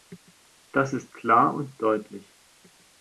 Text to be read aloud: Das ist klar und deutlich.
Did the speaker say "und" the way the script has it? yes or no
yes